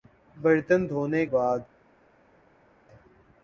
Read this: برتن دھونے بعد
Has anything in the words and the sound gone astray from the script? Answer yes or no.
no